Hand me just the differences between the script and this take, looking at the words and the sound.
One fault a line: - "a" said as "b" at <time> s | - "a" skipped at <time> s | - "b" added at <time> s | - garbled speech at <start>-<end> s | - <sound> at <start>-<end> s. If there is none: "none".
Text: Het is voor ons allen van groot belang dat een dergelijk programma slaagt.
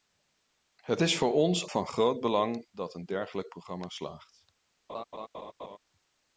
- "allen" skipped at 1.7 s
- laugh at 4.9-5.8 s